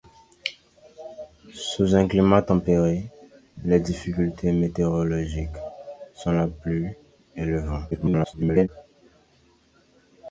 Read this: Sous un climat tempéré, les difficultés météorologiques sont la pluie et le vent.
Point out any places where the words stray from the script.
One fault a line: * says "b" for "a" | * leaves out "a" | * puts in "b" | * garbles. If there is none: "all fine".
* garbles